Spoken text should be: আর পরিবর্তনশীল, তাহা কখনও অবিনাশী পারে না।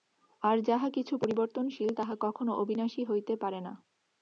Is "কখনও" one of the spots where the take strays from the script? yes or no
no